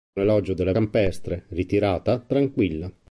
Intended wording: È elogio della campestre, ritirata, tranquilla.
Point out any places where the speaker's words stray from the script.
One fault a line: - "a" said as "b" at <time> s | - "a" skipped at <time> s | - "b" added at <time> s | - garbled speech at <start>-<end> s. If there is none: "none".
none